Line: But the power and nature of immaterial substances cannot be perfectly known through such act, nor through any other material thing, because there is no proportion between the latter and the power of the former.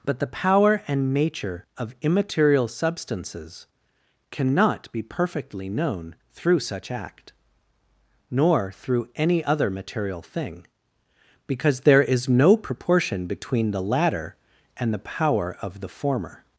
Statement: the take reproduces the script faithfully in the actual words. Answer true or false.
true